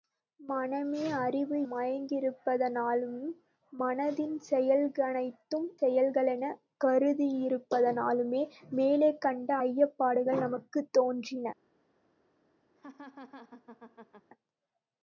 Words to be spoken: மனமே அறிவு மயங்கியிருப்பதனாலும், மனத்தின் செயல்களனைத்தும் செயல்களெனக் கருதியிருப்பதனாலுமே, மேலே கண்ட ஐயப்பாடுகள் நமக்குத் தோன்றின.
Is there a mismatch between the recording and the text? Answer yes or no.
no